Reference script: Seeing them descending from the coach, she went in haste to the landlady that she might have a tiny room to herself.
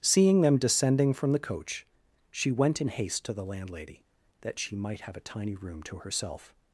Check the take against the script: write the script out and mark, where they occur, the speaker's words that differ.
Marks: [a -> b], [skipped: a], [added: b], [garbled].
Seeing them descending from the coach, she went in haste to the landlady that she might have a tiny room to herself.